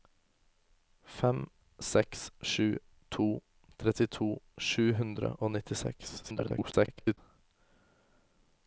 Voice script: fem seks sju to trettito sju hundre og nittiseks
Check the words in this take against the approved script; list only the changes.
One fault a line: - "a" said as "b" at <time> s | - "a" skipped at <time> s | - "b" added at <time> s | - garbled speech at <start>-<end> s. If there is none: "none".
- garbled speech at 6.2-7.2 s